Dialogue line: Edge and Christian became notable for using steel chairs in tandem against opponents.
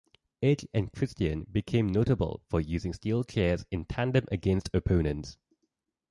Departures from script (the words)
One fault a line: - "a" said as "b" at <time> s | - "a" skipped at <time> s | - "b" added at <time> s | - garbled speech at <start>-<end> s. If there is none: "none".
none